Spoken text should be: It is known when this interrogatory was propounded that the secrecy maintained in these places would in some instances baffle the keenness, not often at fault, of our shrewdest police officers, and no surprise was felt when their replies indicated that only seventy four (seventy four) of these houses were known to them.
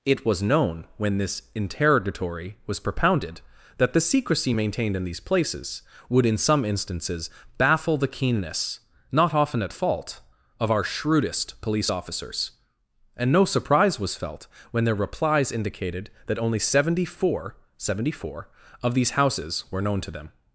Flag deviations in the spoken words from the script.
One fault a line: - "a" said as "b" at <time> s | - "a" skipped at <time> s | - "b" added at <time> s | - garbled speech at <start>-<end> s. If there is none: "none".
- "is" said as "was" at 0.2 s